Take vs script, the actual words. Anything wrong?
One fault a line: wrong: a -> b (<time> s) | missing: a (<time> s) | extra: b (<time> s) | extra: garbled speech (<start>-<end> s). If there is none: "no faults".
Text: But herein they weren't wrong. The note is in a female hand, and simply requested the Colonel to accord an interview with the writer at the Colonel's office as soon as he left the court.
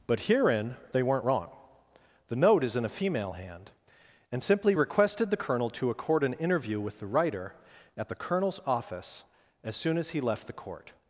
no faults